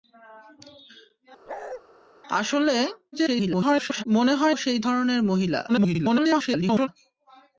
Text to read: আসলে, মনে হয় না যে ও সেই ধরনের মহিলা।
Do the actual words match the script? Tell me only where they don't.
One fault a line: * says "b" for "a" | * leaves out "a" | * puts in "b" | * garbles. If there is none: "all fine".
* garbles
* leaves out "না যে ও"
* garbles